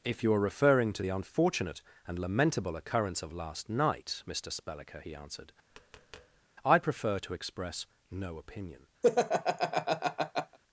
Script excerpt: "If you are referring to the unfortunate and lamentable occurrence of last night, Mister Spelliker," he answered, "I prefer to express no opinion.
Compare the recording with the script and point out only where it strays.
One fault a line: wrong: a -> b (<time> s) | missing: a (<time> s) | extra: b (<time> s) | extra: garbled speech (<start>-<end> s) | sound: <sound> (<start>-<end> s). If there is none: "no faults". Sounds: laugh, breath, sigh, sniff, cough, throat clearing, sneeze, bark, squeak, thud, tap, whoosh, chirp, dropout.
sound: tap (5.7-6.5 s)
sound: laugh (9.0-10.6 s)